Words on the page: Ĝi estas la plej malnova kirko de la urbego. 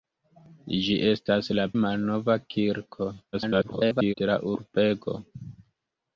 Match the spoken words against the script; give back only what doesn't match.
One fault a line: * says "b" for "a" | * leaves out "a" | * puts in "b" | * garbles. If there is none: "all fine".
* leaves out "plej"
* garbles